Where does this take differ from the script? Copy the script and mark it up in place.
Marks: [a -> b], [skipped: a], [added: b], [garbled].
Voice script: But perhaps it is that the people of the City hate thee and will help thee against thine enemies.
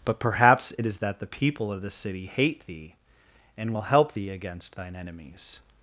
But perhaps it is that the people of the City hate thee and will help thee against thine enemies.